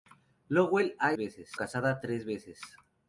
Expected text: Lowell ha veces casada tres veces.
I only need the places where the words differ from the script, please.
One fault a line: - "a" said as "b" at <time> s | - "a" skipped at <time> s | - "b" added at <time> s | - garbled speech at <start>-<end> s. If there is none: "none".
none